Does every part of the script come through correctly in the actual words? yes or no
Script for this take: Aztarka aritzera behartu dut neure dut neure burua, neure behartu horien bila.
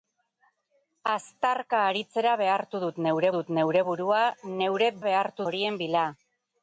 yes